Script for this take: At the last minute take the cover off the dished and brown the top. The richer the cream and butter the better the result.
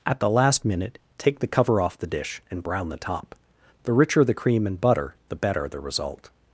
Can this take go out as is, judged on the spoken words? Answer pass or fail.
fail